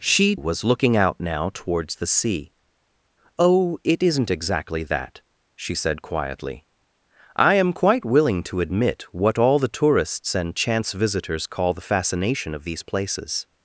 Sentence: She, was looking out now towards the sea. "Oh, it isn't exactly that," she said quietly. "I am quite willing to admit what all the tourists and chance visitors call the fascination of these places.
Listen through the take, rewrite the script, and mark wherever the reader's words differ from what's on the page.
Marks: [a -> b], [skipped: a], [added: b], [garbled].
She, was looking out now towards the sea. "Oh, it isn't exactly that," she said quietly. "I am quite willing to admit what all the tourists and chance visitors call the fascination of these places.